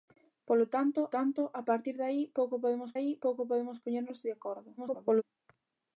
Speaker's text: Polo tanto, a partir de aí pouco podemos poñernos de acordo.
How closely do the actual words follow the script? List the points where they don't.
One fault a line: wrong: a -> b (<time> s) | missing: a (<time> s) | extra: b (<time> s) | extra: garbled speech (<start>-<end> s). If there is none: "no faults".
extra: tanto (1.2 s)
extra: aí pouco podemos (3.0 s)
extra: garbled speech (4.8-5.2 s)